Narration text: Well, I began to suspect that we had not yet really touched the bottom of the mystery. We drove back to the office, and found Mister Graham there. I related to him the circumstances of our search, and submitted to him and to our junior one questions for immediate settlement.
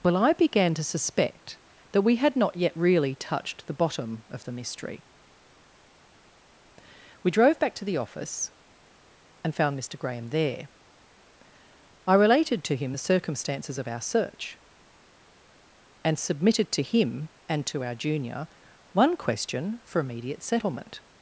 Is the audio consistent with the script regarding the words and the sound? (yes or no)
no